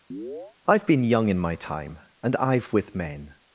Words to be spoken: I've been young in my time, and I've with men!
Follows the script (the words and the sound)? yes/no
no